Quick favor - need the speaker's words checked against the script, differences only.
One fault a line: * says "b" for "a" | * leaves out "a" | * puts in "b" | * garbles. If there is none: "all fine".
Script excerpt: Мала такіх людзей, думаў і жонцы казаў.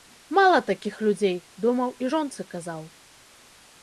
all fine